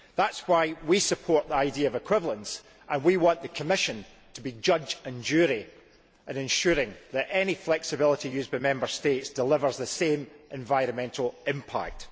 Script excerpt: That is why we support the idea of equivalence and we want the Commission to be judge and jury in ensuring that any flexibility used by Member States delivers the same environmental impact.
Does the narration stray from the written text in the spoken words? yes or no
no